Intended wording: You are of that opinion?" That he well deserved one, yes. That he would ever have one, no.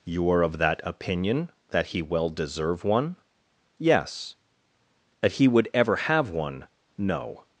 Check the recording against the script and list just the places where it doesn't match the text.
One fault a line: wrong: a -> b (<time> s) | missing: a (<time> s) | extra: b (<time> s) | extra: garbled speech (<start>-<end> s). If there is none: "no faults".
wrong: deserved -> deserve (2.3 s)